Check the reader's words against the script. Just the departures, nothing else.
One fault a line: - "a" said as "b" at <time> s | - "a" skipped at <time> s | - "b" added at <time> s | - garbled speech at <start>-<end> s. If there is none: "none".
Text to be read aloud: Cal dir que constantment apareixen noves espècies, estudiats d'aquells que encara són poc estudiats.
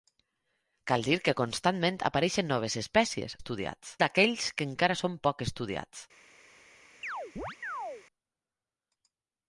none